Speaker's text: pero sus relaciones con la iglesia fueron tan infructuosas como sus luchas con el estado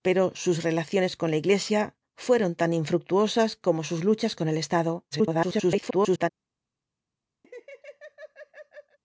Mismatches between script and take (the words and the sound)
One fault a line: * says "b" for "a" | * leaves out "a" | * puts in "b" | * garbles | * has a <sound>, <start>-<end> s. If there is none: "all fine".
* garbles
* has a laugh, 7.4-9.0 s